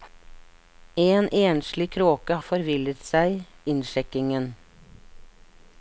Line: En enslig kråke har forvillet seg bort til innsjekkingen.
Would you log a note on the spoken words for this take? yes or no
yes